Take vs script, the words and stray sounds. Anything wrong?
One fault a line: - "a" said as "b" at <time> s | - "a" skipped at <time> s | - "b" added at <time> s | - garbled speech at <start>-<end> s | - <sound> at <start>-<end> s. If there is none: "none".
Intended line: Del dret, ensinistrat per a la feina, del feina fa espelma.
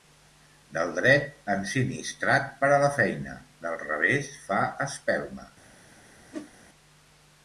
- "feina" said as "revés" at 3.9 s
- whoosh at 6.3-6.5 s